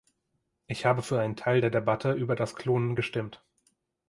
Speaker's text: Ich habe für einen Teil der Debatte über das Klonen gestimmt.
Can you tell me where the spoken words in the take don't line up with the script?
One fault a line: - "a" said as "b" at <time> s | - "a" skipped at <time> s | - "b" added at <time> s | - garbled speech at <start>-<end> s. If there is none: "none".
none